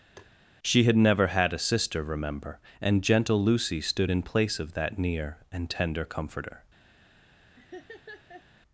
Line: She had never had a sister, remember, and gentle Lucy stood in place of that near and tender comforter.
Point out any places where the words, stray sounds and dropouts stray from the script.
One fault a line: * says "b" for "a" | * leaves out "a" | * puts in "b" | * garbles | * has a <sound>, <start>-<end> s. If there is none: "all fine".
* has a tap, 0.2-0.3 s
* has a laugh, 7.6-8.5 s